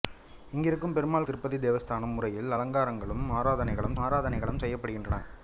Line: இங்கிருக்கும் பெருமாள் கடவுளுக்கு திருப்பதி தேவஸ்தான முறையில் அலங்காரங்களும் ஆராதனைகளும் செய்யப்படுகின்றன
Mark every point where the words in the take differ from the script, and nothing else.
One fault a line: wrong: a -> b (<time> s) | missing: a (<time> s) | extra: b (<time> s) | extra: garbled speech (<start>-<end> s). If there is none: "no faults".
missing: கடவுளுக்கு (1.3 s)
extra: ஆராதனைகளும் (4.0 s)